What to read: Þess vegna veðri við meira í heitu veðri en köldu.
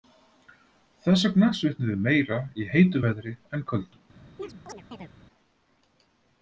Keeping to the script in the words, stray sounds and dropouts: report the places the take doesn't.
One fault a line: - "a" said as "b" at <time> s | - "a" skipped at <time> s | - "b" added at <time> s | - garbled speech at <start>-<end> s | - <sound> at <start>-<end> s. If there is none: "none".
- "veðri" said as "svitnum" at 1.6 s
- chirp at 4.4-5.1 s